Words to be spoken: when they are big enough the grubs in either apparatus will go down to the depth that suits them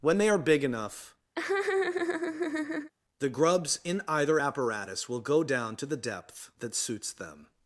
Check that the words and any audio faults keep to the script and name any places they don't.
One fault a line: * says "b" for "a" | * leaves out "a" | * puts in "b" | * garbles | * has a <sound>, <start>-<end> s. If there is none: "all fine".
* has a laugh, 1.4-2.9 s